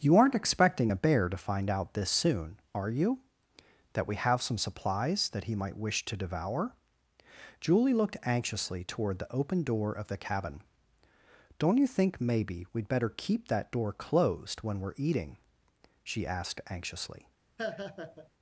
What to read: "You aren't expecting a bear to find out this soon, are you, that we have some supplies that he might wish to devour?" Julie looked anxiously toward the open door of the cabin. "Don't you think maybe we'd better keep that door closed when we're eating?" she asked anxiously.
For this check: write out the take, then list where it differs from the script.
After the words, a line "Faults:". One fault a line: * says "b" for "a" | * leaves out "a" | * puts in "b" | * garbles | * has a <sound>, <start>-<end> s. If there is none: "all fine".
"You aren't expecting a bear to find out this soon, are you, that we have some supplies that he might wish to devour?" Julie looked anxiously toward the open door of the cabin. "Don't you think maybe we'd better keep that door closed when we're eating?" she asked anxiously.
Faults:
* has a laugh, 17.6-18.3 s